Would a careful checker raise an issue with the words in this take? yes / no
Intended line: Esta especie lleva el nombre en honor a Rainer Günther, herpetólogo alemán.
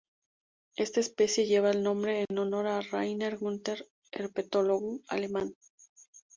no